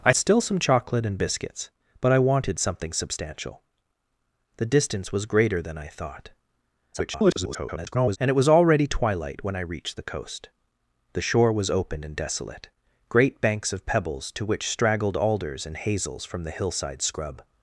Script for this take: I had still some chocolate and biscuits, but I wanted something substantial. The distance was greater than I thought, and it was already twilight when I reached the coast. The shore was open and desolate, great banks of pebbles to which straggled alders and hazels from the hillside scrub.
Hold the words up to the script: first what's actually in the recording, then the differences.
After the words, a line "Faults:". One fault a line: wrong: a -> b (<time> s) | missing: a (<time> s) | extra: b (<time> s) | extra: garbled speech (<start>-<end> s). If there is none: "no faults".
I still some chocolate and biscuits, but I wanted something substantial. The distance was greater than I thought, [garbled] and it was already twilight when I reached the coast. The shore was open and desolate, great banks of pebbles to which straggled alders and hazels from the hillside scrub.
Faults:
missing: had (0.1 s)
extra: garbled speech (6.9-8.2 s)